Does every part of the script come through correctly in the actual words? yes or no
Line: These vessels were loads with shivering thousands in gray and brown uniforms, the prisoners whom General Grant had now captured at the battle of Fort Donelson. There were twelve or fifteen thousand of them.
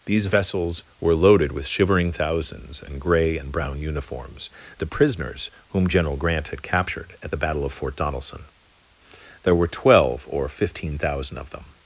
no